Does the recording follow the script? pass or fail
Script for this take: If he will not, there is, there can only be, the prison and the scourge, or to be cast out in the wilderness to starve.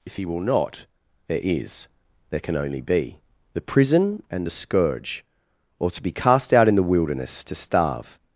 pass